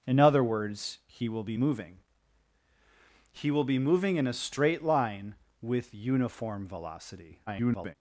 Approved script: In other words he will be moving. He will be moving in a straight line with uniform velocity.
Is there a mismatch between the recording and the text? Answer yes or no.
yes